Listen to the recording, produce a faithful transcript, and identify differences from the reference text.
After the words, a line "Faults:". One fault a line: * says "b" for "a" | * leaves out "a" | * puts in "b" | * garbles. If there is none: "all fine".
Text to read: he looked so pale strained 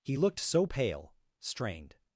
he looked so pale strained
Faults:
all fine